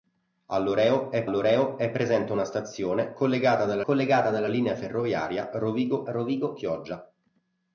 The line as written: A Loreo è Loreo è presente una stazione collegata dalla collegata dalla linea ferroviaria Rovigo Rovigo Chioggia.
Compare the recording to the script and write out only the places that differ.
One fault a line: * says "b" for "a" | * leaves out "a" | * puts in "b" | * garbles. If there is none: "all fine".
all fine